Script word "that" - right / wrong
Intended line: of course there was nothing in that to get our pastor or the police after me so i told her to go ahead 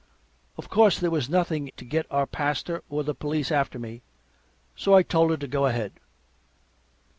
wrong